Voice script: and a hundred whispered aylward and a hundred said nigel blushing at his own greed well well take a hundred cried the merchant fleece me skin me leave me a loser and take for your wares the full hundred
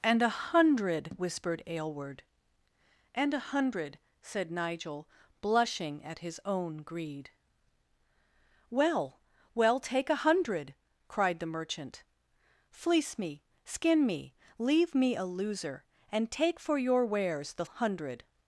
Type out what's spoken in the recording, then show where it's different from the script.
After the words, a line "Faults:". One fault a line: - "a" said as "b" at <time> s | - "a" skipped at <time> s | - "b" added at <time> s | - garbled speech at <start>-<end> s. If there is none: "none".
and a hundred whispered aylward and a hundred said nigel blushing at his own greed well well take a hundred cried the merchant fleece me skin me leave me a loser and take for your wares the hundred
Faults:
- "full" skipped at 17.6 s